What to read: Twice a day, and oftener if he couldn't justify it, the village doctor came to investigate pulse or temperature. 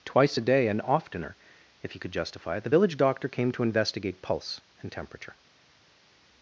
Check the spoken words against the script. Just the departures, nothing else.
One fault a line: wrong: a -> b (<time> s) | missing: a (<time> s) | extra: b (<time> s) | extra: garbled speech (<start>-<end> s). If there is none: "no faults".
wrong: couldn't -> could (2.0 s)
wrong: or -> and (4.8 s)